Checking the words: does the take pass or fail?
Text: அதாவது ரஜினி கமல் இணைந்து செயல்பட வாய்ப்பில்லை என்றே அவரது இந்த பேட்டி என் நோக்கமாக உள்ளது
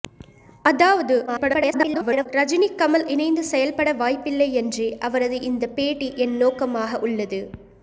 fail